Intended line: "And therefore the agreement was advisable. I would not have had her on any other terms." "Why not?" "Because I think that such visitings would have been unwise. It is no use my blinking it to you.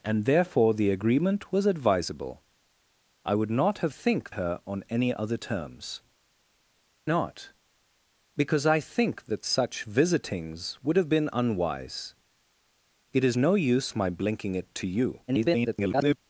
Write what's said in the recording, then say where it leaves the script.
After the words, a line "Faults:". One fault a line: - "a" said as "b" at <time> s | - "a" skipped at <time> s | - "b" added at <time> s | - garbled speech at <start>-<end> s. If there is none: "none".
"And therefore the agreement was advisable. I would not have think her on any other terms." "Not?" "Because I think that such visitings would have been unwise. It is no use my blinking it to you. [garbled]
Faults:
- "had" said as "think" at 3.9 s
- "Why" skipped at 6.0 s
- garbled speech at 15.3-16.2 s